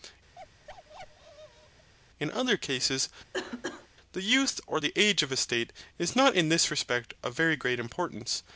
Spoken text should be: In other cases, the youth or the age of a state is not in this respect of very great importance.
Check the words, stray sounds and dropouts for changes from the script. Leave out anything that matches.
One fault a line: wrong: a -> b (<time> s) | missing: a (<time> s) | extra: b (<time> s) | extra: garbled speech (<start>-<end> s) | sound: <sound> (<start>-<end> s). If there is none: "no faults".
sound: bark (0.4-1.9 s)
sound: cough (3.3-3.9 s)